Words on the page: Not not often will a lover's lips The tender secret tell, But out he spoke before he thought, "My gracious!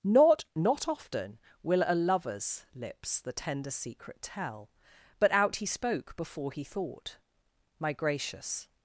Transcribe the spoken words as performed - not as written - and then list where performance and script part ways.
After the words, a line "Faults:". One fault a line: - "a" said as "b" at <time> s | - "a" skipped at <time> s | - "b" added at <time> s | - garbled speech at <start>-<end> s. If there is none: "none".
Not not often will a lover's lips The tender secret tell, But out he spoke before he thought, "My gracious!
Faults:
none